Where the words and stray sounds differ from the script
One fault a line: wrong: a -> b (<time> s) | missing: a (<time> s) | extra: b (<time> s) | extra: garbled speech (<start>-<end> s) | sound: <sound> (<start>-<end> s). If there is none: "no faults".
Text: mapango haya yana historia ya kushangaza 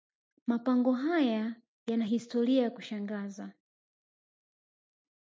no faults